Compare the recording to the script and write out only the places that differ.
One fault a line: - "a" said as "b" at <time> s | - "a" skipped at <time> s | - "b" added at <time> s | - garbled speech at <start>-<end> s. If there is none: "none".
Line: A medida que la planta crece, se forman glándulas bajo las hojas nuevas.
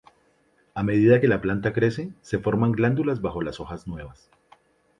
none